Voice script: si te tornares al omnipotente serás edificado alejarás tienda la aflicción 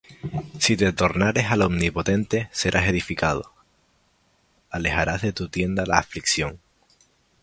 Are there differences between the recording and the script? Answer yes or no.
yes